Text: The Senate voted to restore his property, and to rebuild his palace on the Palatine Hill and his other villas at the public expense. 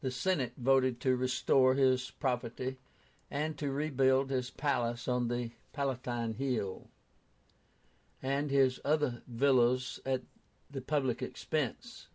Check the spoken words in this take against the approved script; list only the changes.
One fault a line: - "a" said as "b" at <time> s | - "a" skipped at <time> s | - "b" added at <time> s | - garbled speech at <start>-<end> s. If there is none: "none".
none